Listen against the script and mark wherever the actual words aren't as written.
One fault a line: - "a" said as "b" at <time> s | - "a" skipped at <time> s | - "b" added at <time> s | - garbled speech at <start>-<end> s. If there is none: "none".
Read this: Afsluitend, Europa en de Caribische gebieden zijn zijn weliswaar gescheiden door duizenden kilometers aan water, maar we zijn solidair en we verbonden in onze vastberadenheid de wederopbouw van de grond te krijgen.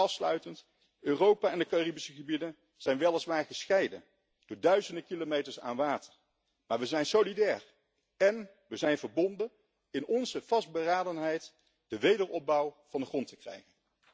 - "zijn" skipped at 3.0 s
- "zijn" added at 8.8 s